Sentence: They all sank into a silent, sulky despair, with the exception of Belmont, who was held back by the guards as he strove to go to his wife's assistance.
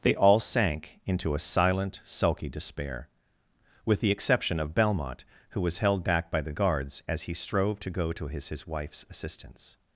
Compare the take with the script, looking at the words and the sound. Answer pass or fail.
fail